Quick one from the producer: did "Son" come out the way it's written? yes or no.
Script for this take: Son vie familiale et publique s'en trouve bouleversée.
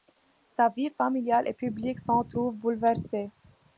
no